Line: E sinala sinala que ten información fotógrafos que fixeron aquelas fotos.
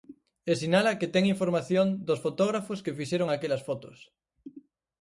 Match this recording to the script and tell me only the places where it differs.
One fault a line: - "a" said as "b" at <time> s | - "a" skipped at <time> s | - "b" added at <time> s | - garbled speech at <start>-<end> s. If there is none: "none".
- "sinala" skipped at 1.0 s
- "dos" added at 2.1 s